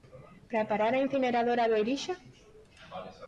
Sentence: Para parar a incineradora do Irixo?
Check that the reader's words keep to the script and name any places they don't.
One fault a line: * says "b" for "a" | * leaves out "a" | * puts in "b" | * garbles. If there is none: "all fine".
all fine